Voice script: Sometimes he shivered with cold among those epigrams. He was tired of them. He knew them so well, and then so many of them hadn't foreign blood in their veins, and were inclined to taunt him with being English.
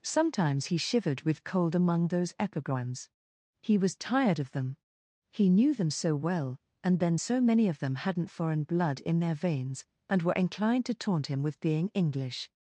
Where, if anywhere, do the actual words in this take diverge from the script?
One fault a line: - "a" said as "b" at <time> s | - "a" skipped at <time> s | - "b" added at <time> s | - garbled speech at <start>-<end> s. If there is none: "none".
none